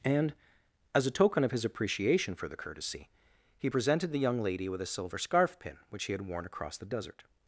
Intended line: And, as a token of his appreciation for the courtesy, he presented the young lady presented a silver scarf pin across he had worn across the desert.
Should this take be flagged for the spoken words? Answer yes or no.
yes